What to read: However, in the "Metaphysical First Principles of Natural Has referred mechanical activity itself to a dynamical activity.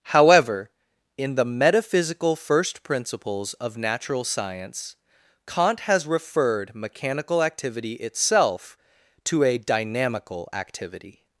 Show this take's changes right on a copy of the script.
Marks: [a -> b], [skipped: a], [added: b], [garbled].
However, in the "Metaphysical First Principles of Natural [added: Science Kant] Has referred mechanical activity itself to a dynamical activity.